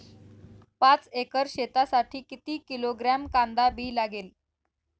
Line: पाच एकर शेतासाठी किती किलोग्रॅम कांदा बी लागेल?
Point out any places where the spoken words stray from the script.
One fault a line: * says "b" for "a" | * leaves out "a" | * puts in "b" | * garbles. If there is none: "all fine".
all fine